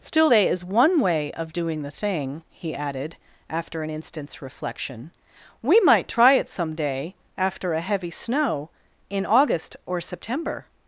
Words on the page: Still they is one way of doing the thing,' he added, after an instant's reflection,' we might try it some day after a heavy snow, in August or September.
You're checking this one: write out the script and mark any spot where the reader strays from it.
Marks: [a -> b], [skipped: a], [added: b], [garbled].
Still they is one way of doing the thing,' he added, after an instant's reflection,' we might try it some day after a heavy snow, in August or September.